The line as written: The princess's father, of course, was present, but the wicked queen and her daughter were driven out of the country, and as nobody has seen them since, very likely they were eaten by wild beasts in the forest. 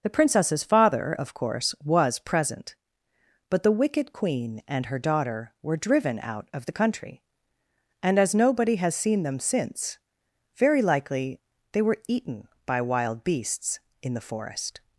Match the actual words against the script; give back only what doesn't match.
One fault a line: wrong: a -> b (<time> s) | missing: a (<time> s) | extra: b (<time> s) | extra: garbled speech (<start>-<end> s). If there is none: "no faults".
no faults